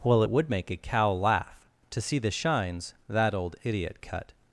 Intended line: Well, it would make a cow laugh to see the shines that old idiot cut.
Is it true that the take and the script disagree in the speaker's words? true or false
false